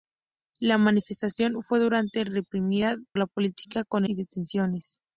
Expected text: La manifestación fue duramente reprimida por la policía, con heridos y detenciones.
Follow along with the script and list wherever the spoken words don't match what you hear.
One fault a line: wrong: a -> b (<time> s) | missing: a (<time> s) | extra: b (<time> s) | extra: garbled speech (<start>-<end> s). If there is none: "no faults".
missing: por (3.0 s)
missing: heridos (4.0 s)